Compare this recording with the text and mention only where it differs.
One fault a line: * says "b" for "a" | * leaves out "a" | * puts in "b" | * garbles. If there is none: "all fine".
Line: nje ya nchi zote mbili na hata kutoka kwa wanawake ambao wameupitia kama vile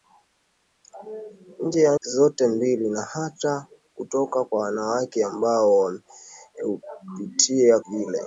* leaves out "nchi"
* leaves out "kama"